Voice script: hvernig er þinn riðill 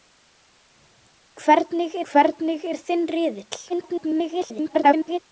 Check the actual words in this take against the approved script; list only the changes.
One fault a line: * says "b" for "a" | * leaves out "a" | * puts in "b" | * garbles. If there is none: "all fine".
* puts in "hvernig"
* garbles